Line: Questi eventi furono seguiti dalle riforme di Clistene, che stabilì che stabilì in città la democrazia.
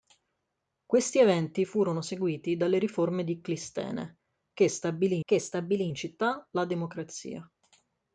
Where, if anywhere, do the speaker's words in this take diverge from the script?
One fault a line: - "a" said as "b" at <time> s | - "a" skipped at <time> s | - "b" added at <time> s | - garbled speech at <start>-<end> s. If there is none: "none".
none